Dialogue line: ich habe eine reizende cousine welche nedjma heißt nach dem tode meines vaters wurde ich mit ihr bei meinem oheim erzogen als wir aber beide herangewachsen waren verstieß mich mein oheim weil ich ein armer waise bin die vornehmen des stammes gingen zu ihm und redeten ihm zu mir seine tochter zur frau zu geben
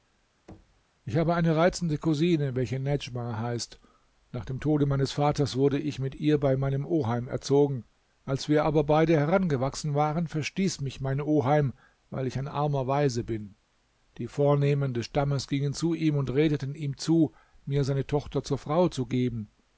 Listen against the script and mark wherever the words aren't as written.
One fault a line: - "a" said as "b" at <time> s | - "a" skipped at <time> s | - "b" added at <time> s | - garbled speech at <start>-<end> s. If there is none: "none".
none